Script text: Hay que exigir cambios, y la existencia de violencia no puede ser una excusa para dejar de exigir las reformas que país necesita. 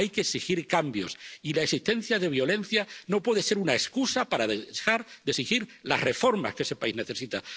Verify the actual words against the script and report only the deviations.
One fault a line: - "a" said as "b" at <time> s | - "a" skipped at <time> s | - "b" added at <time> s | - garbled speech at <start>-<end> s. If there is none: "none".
- "ese" added at 6.6 s